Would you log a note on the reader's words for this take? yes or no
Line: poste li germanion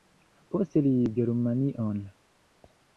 no